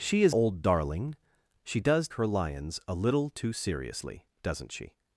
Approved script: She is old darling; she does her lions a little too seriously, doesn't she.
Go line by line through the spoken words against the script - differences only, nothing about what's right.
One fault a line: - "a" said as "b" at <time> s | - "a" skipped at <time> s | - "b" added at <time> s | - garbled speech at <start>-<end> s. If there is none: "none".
none